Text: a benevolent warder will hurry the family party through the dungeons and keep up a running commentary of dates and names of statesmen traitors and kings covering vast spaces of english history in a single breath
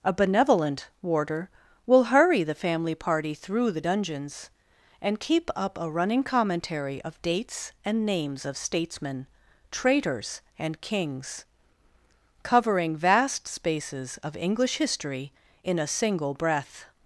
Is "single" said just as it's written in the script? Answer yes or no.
yes